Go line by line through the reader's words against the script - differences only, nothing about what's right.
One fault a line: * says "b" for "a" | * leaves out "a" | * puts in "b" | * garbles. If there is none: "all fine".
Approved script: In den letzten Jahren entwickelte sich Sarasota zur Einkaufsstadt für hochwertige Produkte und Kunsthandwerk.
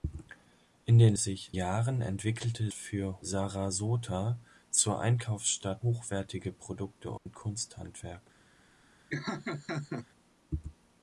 * says "sich" for "letzten"
* says "für" for "sich"
* leaves out "für"